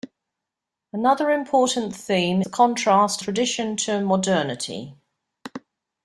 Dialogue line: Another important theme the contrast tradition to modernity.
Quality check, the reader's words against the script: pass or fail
pass